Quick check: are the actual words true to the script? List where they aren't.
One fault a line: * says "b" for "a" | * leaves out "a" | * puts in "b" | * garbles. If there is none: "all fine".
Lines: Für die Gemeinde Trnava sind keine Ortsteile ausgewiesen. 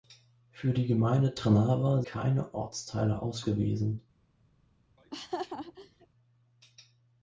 * leaves out "sind"